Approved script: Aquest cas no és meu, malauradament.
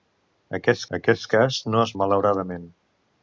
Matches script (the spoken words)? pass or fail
fail